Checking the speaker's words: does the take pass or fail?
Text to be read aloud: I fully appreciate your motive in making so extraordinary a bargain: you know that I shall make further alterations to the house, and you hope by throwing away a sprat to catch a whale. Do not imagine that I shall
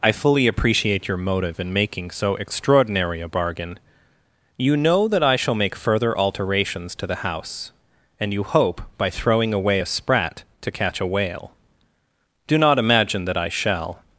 pass